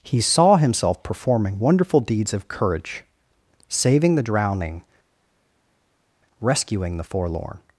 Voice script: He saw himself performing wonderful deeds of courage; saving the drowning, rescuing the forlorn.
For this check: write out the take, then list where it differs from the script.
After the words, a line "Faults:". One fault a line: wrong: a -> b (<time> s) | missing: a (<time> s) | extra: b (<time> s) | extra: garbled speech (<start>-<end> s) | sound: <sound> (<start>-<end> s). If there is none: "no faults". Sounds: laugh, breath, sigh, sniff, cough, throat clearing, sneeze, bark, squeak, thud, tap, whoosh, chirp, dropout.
He saw himself performing wonderful deeds of courage; saving the drowning, rescuing the forlorn.
Faults:
no faults